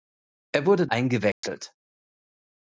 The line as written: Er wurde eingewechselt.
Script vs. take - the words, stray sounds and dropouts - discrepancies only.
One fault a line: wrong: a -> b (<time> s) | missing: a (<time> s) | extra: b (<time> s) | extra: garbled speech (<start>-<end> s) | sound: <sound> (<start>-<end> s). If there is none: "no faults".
sound: dropout (1.3-1.4 s)